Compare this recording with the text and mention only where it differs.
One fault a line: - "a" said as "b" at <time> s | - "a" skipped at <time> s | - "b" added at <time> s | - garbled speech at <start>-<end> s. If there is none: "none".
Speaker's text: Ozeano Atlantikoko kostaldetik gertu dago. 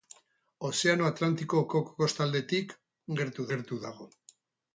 - "gertu" added at 3.5 s